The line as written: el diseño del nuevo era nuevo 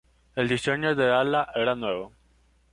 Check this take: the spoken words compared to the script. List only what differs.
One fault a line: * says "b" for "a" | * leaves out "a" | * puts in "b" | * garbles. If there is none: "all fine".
* says "ala" for "nuevo"